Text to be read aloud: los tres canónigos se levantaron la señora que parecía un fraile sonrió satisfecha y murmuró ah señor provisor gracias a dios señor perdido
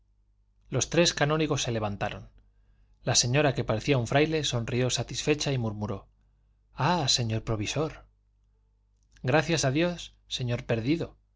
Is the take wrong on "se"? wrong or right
right